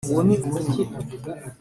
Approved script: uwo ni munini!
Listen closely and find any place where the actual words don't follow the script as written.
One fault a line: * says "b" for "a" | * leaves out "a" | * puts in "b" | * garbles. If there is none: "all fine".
all fine